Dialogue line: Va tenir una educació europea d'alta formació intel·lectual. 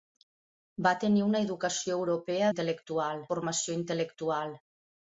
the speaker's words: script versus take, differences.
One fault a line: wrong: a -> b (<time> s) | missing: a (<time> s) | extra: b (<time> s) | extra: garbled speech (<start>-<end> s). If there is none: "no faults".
wrong: d'alta -> intel·lectual (2.5 s)